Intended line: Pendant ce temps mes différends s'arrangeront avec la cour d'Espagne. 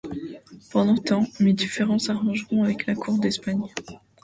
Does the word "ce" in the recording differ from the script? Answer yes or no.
yes